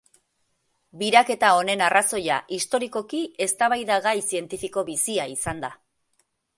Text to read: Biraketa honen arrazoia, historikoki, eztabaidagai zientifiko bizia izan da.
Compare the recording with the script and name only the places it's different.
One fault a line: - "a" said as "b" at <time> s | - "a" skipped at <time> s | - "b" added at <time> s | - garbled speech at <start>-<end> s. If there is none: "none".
none